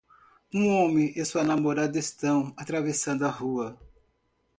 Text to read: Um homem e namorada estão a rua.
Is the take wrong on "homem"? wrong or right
right